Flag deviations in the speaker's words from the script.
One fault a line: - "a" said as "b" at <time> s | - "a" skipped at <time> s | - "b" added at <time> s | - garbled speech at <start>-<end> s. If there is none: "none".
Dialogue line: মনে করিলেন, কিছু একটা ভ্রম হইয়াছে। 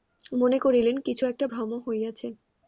none